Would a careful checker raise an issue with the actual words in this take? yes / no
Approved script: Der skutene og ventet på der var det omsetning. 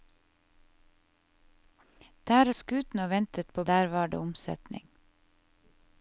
no